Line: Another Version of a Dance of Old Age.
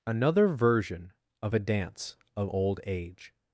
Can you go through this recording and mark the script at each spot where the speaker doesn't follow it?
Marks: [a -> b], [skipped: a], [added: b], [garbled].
Another Version of a Dance of Old Age.